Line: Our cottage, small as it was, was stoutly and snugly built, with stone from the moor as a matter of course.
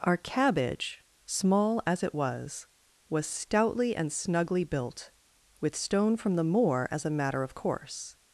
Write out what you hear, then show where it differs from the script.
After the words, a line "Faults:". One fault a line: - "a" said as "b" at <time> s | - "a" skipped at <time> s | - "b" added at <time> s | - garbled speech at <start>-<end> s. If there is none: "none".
Our cabbage, small as it was, was stoutly and snugly built, with stone from the moor as a matter of course.
Faults:
- "cottage" said as "cabbage" at 0.2 s